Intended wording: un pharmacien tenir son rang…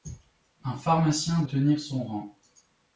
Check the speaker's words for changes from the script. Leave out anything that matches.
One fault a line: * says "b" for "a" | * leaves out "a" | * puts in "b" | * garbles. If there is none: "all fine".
all fine